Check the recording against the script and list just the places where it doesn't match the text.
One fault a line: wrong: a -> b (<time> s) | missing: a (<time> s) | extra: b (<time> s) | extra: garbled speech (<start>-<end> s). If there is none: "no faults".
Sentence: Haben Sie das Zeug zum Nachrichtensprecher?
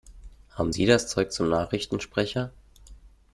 no faults